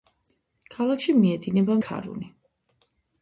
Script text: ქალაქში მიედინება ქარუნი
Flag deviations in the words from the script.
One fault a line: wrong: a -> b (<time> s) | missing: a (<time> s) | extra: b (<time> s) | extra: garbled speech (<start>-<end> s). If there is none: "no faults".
no faults